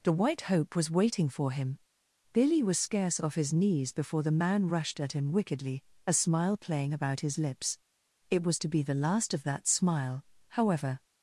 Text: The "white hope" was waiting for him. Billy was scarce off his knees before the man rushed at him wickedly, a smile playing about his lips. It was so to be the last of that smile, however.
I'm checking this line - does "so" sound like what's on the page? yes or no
no